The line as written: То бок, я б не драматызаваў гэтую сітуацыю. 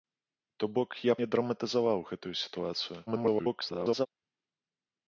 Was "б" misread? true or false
true